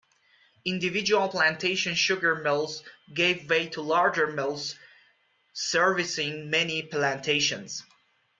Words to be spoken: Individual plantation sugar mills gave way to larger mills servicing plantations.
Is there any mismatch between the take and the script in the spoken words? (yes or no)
yes